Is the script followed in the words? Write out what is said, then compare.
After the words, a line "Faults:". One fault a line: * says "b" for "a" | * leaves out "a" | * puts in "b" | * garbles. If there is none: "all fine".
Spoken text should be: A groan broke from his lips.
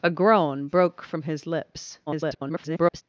A groan broke from his lips. [garbled]
Faults:
* garbles